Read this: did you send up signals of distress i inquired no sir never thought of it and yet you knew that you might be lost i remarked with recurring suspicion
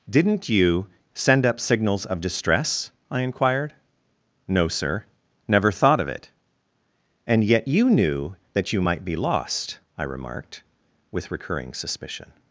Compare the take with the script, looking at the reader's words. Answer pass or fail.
fail